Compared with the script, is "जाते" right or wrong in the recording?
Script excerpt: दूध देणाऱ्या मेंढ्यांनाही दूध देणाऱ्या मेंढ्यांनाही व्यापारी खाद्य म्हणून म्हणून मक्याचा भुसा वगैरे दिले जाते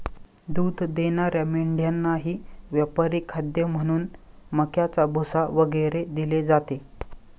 right